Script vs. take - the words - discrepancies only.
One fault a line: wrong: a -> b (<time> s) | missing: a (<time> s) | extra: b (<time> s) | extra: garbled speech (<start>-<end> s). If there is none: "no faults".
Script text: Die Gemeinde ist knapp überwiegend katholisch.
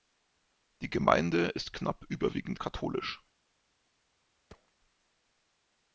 no faults